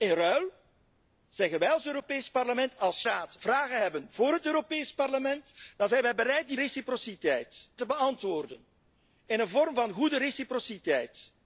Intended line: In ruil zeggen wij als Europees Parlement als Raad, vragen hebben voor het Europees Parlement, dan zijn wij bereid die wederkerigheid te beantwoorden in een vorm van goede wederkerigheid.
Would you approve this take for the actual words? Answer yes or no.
yes